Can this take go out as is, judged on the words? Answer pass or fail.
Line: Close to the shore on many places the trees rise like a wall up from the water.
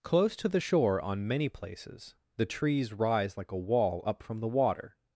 pass